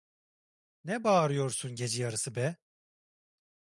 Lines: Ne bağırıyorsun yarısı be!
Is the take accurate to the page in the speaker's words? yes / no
no